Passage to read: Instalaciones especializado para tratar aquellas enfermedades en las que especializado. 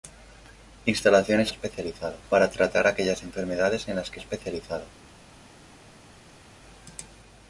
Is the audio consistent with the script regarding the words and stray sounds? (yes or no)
yes